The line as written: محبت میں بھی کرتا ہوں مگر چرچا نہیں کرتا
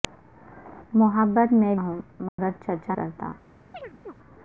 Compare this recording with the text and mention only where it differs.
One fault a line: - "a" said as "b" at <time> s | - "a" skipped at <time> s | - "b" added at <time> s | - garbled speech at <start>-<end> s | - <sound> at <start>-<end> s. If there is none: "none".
- "بھی کرتا" skipped at 1.8 s
- dropout at 2.3-2.4 s
- "نہیں" skipped at 2.9 s
- chirp at 3.7-4.1 s